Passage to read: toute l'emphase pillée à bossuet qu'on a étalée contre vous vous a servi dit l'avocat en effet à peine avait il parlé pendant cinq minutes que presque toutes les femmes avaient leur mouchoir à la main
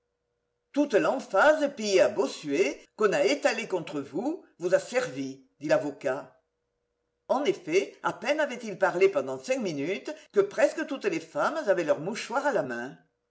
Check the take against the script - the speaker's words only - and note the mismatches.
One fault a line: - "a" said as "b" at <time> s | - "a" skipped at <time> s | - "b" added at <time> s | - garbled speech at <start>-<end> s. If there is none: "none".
none